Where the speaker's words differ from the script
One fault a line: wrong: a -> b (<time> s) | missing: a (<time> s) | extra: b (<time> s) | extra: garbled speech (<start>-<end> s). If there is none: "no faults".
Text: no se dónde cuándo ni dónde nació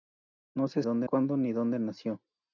no faults